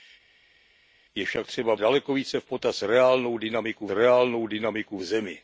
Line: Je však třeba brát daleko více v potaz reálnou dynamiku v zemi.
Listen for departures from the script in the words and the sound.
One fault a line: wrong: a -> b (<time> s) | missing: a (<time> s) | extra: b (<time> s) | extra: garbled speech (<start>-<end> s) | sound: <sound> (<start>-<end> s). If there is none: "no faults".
missing: brát (1.7 s)
extra: reálnou dynamiku (3.9 s)